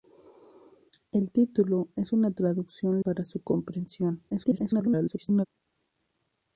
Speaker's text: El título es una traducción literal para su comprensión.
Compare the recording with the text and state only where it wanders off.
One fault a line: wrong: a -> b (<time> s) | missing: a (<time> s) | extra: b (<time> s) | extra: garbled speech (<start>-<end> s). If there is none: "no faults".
missing: literal (3.0 s)
extra: garbled speech (4.3-5.5 s)